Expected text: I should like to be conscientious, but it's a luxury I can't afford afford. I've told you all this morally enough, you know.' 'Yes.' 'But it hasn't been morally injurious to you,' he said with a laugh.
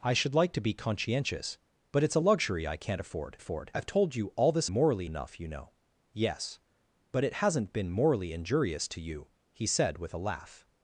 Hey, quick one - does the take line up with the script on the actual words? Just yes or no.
yes